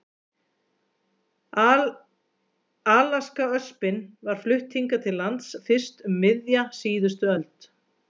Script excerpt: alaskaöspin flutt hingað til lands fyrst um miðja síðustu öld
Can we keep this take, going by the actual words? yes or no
no